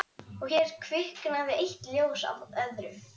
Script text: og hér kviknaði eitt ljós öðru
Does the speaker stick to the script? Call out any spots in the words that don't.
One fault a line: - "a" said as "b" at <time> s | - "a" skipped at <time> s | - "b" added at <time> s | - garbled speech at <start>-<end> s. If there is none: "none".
- "af" added at 2.3 s